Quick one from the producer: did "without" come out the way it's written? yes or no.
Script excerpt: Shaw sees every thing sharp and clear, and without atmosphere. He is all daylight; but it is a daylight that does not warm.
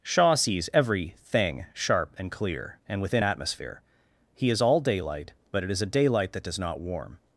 no